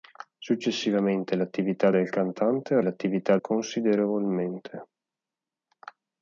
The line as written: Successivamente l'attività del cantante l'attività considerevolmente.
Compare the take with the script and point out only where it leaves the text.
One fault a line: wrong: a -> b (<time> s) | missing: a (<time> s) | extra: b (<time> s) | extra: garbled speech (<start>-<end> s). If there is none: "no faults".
no faults